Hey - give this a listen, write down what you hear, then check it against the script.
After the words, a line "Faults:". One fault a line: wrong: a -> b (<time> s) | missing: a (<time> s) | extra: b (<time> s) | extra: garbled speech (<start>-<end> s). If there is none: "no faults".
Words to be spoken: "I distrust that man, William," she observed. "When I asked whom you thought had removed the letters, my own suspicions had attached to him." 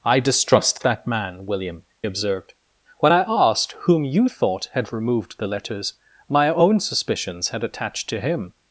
"I distrust that man, William," observed. "When I asked whom you thought had removed the letters, my own suspicions had attached to him."
Faults:
missing: she (1.8 s)